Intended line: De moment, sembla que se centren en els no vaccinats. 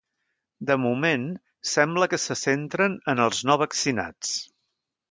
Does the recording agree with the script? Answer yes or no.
yes